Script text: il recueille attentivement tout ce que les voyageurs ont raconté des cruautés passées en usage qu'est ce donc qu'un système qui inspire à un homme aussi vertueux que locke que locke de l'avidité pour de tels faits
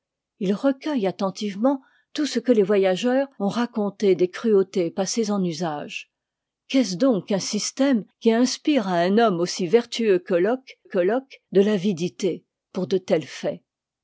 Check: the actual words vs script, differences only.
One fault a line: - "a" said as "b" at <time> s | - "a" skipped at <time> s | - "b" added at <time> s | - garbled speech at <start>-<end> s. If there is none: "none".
none